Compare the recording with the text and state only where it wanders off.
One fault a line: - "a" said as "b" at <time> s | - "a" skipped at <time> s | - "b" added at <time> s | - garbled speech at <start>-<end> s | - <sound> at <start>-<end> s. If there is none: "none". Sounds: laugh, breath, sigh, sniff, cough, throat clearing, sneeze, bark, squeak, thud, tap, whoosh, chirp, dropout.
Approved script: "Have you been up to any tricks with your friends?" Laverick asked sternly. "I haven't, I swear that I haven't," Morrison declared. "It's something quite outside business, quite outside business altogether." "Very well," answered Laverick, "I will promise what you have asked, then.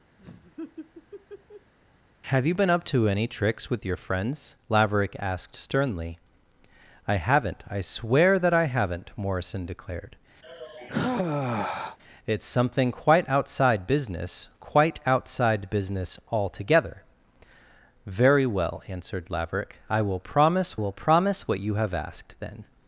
- laugh at 0.2-1.7 s
- sigh at 10.4-12.0 s
- "will promise" added at 20.8 s